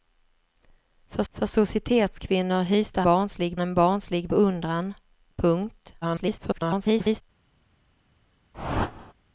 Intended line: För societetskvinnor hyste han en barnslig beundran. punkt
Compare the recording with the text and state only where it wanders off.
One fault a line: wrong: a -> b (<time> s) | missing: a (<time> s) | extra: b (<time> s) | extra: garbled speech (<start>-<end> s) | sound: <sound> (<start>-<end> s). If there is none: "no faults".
extra: för (1.3 s)
wrong: han -> barnslig (3.0 s)
extra: garbled speech (6.0-7.2 s)
sound: whoosh (8.5-9.1 s)